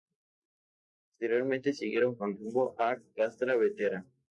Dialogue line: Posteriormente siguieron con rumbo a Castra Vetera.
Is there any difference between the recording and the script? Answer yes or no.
no